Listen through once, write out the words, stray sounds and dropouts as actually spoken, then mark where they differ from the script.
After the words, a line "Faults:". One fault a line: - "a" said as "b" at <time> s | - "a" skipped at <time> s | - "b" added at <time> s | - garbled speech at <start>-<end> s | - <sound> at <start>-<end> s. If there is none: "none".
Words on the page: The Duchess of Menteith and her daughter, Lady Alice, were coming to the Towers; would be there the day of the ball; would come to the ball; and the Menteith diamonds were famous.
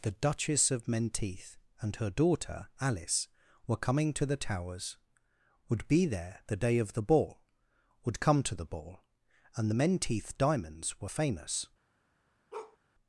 The Duchess of Menteith and her daughter, Alice, were coming to the Towers; would be there the day of the ball; would come to the ball; and the Menteith diamonds were famous.
Faults:
- "Lady" skipped at 2.7 s
- bark at 12.5-12.8 s